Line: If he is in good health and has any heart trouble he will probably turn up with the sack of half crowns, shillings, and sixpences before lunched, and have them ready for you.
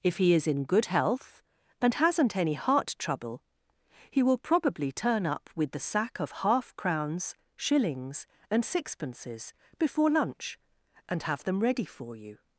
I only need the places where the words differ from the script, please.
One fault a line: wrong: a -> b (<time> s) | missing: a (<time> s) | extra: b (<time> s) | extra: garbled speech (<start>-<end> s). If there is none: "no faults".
wrong: has -> hasn't (1.9 s)
wrong: lunched -> lunch (10.1 s)